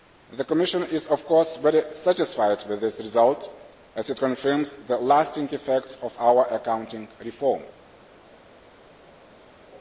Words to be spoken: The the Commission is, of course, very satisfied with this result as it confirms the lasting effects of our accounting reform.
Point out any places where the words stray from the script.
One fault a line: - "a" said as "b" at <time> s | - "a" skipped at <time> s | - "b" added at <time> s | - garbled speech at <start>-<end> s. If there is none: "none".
- "the" skipped at 0.4 s